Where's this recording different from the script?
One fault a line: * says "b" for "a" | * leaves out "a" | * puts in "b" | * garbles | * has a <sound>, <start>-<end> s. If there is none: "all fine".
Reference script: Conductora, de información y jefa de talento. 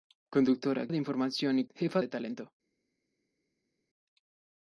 all fine